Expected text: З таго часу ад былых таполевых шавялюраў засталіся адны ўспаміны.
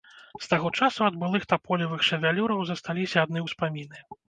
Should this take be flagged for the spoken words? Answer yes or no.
no